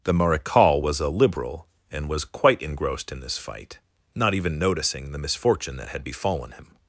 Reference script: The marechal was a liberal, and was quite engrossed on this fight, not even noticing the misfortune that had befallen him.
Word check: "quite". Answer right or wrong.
right